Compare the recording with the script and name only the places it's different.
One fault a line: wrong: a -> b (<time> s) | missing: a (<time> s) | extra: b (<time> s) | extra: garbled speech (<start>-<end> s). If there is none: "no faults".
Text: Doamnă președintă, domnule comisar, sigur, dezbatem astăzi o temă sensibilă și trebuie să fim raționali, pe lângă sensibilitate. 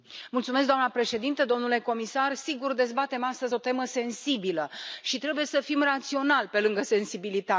no faults